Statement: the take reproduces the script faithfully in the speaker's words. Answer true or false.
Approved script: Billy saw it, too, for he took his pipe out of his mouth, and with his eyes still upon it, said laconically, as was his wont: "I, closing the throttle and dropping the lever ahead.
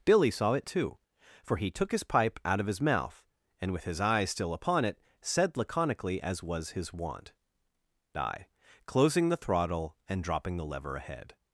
true